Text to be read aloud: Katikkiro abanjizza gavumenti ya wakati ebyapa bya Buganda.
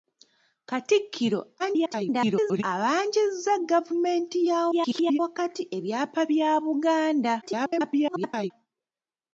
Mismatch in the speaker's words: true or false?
true